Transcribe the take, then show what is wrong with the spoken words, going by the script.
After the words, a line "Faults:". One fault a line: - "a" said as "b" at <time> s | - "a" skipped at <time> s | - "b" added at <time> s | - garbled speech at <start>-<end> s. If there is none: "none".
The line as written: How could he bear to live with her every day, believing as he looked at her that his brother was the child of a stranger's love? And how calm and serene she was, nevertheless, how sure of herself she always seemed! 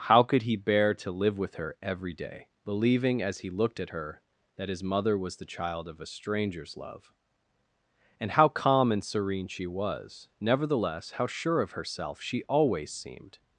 How could he bear to live with her every day, believing as he looked at her that his mother was the child of a stranger's love? And how calm and serene she was, nevertheless, how sure of herself she always seemed!
Faults:
- "brother" said as "mother" at 4.8 s